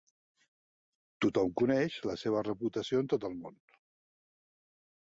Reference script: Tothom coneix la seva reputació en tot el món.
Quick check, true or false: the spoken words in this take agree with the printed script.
true